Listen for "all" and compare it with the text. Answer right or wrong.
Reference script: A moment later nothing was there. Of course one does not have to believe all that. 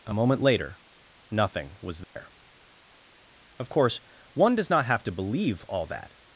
right